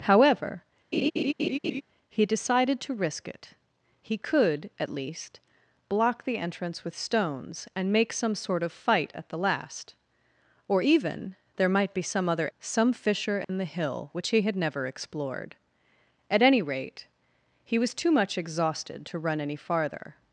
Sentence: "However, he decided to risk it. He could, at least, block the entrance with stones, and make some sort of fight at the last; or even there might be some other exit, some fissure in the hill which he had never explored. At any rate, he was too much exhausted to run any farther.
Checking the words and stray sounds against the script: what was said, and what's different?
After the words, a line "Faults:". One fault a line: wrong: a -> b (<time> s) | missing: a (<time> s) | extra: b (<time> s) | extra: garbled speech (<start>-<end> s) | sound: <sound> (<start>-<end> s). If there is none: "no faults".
"However, he decided to risk it. He could, at least, block the entrance with stones, and make some sort of fight at the last; or even there might be some other some fissure in the hill which he had never explored. At any rate, he was too much exhausted to run any farther.
Faults:
sound: laugh (0.9-1.8 s)
missing: exit (12.5 s)
sound: dropout (13.4-13.5 s)